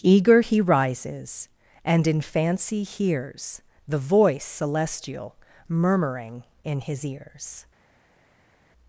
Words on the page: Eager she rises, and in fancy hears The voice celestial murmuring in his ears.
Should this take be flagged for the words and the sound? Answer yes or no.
yes